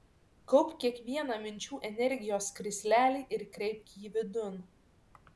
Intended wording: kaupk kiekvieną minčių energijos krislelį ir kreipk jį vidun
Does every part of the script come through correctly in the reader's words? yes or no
yes